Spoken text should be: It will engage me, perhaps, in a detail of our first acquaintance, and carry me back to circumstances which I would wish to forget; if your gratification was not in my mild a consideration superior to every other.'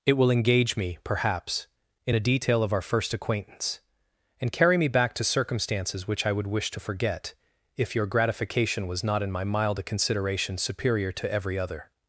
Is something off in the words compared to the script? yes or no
no